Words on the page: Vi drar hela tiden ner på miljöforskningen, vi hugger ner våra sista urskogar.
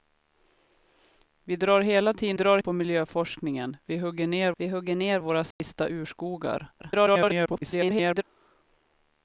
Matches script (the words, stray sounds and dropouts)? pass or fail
fail